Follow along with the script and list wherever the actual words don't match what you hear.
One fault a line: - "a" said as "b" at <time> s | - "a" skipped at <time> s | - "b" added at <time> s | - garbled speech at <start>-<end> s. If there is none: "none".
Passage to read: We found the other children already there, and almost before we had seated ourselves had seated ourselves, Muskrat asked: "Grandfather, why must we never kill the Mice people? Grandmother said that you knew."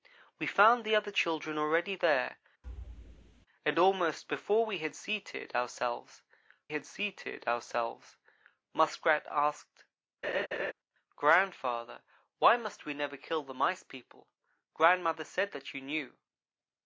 none